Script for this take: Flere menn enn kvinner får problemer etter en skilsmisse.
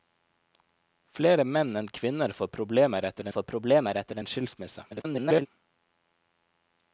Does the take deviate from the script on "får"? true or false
false